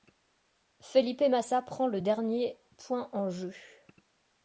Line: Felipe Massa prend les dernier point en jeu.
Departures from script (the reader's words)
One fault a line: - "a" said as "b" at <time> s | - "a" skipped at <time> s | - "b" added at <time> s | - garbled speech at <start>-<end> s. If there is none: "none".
- "les" said as "le" at 1.9 s